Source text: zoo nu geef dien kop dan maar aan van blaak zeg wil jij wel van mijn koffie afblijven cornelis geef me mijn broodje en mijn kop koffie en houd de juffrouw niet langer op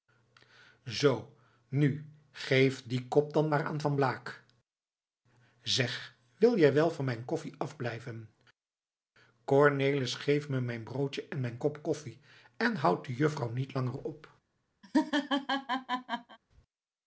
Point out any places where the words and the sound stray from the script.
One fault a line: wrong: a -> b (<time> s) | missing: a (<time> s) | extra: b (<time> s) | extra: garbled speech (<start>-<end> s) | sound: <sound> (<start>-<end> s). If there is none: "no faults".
sound: laugh (14.8-16.4 s)